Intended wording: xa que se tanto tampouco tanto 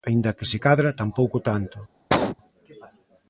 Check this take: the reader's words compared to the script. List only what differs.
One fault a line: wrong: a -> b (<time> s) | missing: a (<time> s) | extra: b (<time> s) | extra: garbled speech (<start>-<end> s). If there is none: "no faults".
wrong: xa -> aínda (0.1 s)
wrong: tanto -> cadra (0.6 s)